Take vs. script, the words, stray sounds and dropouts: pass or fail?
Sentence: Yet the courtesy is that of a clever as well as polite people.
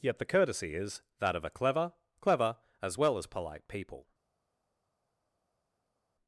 fail